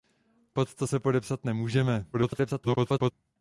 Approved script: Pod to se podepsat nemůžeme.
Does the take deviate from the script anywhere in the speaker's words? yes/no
yes